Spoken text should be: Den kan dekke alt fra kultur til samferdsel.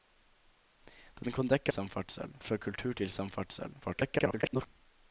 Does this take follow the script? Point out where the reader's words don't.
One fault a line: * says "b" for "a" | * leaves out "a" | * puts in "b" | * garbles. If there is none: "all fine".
* says "samferdsel" for "alt"
* garbles